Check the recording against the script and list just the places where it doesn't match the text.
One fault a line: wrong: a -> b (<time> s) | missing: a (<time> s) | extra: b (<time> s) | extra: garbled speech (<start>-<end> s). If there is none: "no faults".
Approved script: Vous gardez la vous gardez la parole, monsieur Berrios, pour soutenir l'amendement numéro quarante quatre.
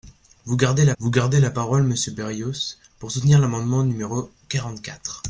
no faults